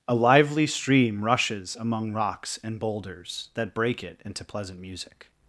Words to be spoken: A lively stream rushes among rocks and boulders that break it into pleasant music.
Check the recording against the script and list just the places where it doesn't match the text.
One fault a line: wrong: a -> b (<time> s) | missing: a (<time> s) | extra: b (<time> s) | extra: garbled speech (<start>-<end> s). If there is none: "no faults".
no faults